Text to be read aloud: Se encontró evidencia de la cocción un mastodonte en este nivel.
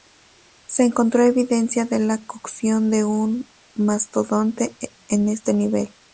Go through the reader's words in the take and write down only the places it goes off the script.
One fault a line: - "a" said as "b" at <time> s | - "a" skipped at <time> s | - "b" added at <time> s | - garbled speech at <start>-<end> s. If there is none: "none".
- "de" added at 2.9 s